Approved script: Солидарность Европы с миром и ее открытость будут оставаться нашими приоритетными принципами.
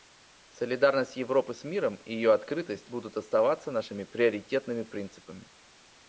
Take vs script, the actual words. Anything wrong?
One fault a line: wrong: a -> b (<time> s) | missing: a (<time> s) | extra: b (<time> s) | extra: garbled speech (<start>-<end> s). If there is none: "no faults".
no faults